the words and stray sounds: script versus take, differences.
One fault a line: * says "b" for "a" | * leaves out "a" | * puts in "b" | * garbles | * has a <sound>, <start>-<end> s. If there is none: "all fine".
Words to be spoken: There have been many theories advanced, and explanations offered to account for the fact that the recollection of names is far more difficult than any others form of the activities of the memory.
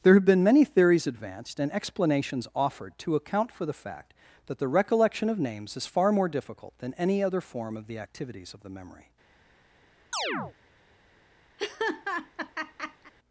* says "other" for "others"
* has a chirp, 10.1-10.5 s
* has a laugh, 11.6-13.1 s